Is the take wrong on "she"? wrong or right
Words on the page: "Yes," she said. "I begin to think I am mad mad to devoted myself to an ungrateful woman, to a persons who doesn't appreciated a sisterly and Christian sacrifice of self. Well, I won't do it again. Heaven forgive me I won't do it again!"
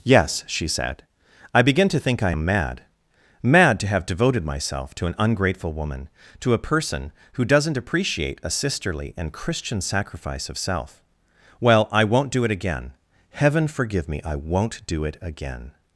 right